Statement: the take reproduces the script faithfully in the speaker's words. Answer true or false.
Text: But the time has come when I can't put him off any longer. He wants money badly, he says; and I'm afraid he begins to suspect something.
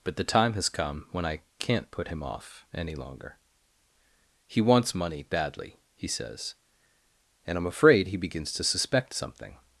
true